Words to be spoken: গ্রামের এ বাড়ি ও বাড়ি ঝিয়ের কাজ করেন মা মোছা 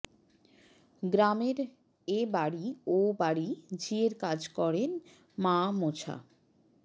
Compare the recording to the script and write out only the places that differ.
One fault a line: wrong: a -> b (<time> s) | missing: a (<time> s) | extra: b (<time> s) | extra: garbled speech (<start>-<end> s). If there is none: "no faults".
no faults